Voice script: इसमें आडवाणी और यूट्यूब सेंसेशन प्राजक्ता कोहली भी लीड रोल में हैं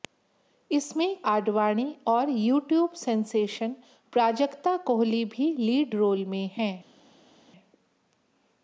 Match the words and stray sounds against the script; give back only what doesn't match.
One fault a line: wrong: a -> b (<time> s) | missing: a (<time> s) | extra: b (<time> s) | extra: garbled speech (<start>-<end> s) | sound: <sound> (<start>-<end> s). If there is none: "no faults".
no faults